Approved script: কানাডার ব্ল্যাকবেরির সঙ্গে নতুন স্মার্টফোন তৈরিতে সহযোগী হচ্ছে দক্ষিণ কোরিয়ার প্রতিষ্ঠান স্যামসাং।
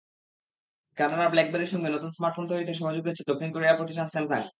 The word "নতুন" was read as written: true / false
true